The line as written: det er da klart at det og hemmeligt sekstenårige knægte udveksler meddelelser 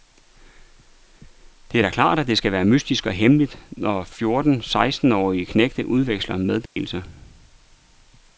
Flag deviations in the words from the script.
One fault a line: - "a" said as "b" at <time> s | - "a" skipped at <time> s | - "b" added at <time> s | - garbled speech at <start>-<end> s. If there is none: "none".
- "skal være mystisk" added at 2.4 s
- "når fjorten" added at 3.7 s